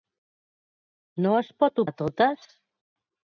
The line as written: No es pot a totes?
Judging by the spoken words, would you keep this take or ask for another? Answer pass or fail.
pass